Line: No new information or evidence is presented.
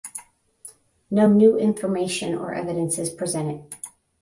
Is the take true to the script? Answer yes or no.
yes